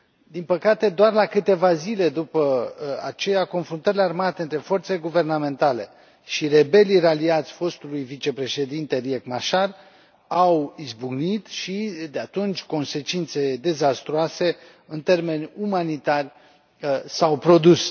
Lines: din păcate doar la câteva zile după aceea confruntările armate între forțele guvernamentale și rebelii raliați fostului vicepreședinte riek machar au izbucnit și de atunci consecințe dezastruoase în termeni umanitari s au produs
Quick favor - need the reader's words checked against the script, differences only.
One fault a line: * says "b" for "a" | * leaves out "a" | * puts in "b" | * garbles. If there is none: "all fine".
all fine